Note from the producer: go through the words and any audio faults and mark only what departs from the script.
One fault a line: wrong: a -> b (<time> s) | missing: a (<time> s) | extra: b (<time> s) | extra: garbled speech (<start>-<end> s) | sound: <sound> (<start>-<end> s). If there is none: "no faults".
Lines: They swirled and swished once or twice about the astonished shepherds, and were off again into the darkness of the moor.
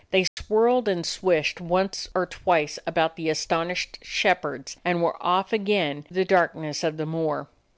sound: dropout (0.3-0.4 s)
missing: into (6.1 s)